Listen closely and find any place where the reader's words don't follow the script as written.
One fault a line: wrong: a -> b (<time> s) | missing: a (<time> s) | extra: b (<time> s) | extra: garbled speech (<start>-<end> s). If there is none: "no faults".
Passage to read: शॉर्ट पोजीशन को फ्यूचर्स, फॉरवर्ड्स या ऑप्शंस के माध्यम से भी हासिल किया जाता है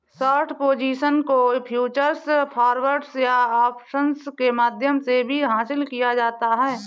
no faults